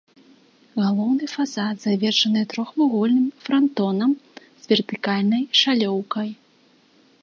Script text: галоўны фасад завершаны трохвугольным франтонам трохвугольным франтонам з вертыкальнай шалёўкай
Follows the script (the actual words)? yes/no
no